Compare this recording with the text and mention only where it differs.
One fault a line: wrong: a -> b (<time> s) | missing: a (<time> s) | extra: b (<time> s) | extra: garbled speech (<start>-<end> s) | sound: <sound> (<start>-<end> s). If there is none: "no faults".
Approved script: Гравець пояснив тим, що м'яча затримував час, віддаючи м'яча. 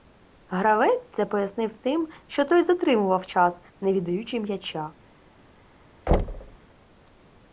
extra: це (1.1 s)
wrong: м'яча -> той (2.5 s)
extra: не (3.8 s)
sound: thud (6.1-6.6 s)